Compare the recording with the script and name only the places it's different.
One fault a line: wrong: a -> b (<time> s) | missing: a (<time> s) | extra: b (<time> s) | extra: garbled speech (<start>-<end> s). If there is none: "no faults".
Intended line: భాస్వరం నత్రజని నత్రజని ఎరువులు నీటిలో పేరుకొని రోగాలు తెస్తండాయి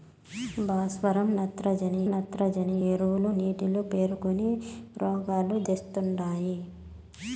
no faults